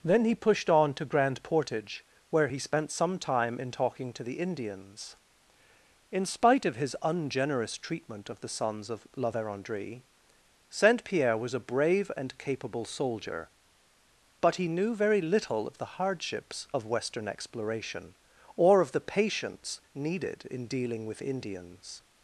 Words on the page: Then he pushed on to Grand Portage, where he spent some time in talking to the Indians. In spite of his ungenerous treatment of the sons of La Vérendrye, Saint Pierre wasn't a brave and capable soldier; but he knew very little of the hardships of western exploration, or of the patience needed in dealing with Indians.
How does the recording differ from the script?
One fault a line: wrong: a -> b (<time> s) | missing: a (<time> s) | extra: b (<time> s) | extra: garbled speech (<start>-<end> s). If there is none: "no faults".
wrong: wasn't -> was (11.4 s)